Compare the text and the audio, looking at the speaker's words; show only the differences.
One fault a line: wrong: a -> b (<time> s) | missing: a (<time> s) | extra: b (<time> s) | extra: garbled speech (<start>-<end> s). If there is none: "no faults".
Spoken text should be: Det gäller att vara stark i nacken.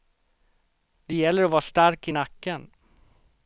no faults